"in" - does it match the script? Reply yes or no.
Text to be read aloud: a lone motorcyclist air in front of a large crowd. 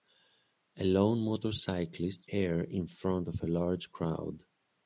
yes